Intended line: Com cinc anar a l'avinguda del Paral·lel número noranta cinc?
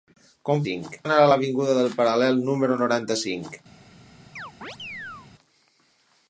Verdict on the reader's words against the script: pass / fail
pass